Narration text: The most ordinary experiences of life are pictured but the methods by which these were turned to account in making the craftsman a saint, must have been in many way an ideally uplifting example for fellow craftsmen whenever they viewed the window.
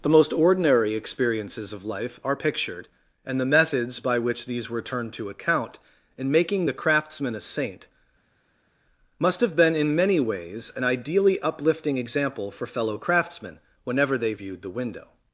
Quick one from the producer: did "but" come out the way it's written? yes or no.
no